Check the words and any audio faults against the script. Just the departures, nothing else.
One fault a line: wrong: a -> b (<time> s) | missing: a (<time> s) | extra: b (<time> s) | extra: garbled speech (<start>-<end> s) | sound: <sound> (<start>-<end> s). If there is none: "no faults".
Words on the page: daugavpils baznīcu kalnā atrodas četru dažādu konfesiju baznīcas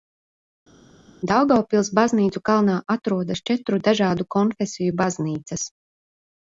no faults